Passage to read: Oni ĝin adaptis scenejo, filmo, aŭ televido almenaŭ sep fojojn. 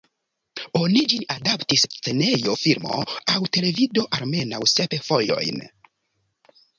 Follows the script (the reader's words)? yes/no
yes